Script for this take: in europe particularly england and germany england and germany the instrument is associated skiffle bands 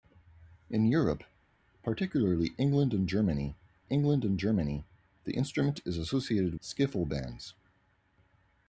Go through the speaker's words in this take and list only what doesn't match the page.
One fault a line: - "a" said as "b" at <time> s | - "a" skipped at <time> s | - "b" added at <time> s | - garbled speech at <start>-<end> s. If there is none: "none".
none